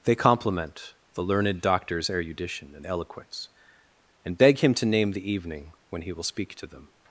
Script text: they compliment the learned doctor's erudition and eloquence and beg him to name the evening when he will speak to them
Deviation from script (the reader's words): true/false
false